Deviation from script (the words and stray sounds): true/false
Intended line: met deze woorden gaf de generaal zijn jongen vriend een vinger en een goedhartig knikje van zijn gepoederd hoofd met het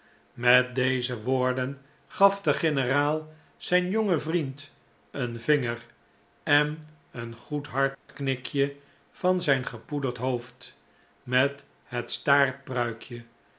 true